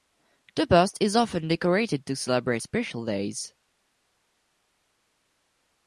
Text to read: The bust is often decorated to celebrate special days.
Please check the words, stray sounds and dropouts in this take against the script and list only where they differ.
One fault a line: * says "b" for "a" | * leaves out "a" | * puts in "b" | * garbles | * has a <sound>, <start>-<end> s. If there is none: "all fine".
all fine